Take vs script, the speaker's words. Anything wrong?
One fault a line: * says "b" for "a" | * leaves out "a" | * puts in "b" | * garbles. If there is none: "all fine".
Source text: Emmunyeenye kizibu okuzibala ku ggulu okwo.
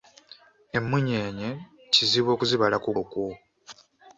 * leaves out "ggulu"